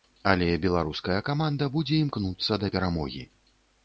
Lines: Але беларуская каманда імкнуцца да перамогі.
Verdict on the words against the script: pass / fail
fail